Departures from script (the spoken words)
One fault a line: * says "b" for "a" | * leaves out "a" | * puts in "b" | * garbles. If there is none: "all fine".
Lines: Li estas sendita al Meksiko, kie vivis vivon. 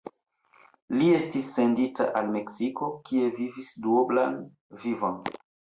* says "estis" for "estas"
* puts in "duoblan"